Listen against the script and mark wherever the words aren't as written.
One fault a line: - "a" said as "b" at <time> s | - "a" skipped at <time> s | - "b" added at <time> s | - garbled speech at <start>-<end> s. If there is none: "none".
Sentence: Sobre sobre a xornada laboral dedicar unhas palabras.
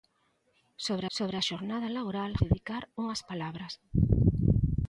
none